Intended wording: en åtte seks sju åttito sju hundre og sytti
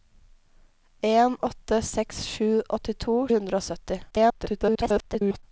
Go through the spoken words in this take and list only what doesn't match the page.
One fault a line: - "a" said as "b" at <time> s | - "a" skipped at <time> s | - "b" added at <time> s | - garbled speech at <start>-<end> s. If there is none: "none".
- "sju" skipped at 3.2 s
- garbled speech at 4.1-5.4 s